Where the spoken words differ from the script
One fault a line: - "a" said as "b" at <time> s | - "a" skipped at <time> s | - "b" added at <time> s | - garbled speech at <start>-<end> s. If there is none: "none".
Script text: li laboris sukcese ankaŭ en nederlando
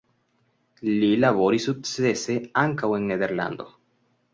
none